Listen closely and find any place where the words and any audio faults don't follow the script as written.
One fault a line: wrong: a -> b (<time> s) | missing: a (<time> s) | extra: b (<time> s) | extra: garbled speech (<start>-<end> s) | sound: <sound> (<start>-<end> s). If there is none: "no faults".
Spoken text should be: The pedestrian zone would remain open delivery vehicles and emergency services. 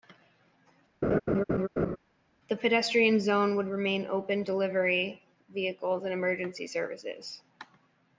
sound: laugh (1.0-2.0 s)